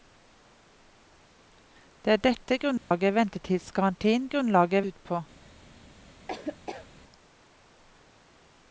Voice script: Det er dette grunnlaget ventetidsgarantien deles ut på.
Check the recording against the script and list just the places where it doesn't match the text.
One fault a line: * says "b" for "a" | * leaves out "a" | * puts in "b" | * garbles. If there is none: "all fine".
* says "grunnlaget" for "deles"